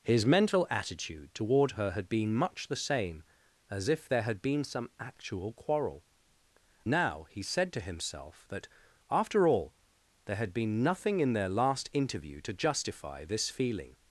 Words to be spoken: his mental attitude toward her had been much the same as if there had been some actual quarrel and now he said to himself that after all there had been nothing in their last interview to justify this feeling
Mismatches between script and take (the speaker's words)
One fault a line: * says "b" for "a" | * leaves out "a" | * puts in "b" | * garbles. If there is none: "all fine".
* leaves out "and"